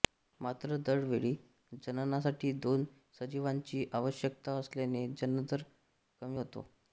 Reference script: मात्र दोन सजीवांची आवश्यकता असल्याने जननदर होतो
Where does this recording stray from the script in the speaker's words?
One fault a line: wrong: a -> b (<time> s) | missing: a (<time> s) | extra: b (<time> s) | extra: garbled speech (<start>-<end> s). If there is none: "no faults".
extra: दर वेळी जननासाठी (0.8 s)
extra: कमी (6.2 s)